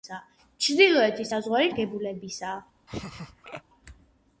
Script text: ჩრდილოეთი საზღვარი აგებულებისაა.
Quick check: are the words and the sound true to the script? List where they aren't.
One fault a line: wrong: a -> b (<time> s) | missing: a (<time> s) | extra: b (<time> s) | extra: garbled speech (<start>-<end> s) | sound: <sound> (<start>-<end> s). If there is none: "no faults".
sound: laugh (2.9-3.6 s)